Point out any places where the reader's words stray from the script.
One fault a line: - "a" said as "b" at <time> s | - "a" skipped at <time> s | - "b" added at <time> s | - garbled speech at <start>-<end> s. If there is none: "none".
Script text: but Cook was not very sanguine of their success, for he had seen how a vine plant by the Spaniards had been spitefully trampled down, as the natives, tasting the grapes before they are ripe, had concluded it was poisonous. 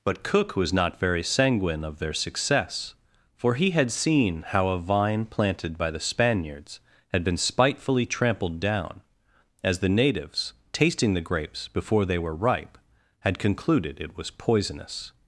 - "plant" said as "planted" at 5.2 s
- "are" said as "were" at 12.2 s